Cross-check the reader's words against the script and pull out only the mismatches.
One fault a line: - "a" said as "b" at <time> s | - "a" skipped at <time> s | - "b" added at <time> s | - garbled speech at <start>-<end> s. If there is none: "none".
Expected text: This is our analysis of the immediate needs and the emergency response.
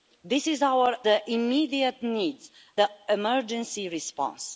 - "analysis of" skipped at 0.9 s
- "and" skipped at 2.5 s